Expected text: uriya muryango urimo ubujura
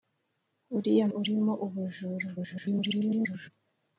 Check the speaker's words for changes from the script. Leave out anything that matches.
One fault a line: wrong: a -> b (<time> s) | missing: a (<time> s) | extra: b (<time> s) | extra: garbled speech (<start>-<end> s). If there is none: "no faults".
missing: muryango (1.1 s)
extra: garbled speech (2.4-3.5 s)